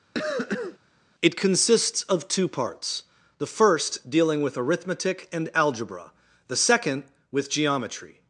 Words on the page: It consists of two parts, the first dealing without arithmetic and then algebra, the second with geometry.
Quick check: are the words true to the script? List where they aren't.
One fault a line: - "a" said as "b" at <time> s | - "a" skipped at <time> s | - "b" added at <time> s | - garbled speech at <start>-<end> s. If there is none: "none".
- "without" said as "with" at 4.4 s
- "then" skipped at 5.5 s